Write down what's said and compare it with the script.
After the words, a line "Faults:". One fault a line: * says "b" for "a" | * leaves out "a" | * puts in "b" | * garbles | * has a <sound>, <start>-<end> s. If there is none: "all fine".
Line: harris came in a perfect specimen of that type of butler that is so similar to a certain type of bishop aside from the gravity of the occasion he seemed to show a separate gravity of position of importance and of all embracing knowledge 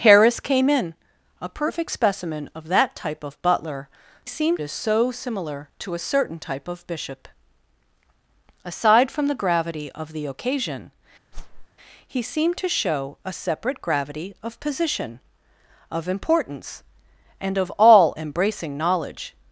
harris came in a perfect specimen of that type of butler seemed is so similar to a certain type of bishop aside from the gravity of the occasion he seemed to show a separate gravity of position of importance and of all embracing knowledge
Faults:
* says "seemed" for "that"
* has a whoosh, 11.3-11.7 s